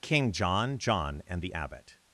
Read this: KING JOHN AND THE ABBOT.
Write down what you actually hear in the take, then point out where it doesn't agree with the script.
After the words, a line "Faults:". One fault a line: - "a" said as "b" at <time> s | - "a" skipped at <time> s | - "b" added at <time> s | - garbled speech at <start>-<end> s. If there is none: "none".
KING JOHN JOHN AND THE ABBOT.
Faults:
- "JOHN" added at 0.8 s